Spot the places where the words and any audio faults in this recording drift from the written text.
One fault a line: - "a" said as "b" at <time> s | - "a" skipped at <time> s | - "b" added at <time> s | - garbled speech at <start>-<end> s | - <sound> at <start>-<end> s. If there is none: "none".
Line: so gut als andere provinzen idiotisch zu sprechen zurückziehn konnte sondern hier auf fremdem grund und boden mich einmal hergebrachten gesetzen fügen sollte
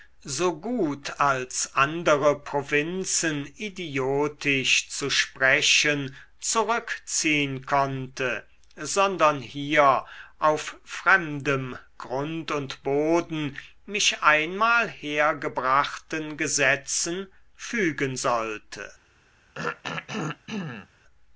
- throat clearing at 19.5-20.9 s